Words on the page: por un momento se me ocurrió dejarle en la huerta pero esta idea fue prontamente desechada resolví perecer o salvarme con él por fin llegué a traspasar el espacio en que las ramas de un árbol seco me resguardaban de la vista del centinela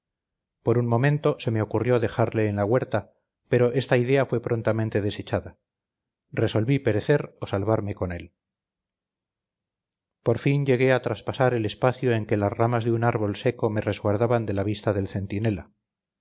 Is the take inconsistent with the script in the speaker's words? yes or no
no